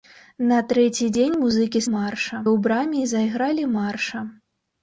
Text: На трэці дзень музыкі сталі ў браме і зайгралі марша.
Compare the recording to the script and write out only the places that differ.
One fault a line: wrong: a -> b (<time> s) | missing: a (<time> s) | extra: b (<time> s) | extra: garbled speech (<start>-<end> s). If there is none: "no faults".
wrong: сталі -> марша (1.9 s)